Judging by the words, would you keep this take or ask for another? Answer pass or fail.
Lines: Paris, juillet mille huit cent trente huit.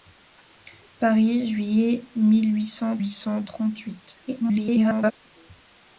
fail